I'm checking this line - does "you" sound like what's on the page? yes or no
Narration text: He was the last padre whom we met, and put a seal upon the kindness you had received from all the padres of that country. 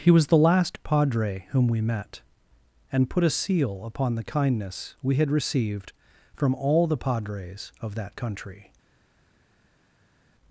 no